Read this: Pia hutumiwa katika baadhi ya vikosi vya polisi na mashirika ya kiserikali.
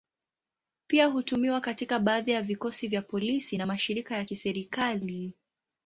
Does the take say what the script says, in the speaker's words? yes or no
yes